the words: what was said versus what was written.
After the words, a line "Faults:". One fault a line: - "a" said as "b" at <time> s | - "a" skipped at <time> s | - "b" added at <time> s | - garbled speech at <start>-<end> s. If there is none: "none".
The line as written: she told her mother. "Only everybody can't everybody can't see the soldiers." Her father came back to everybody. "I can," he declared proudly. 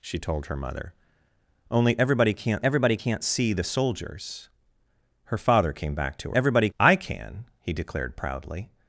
she told her mother. "Only everybody can't everybody can't see the soldiers." Her father came back to everybody. "I can," he declared proudly.
Faults:
none